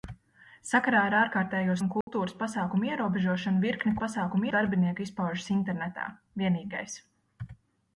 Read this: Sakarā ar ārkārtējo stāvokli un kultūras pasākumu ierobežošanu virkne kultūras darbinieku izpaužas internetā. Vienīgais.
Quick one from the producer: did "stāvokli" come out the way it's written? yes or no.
no